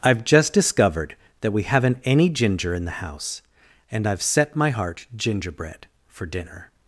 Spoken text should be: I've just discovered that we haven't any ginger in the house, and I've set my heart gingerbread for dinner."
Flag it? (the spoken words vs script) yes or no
no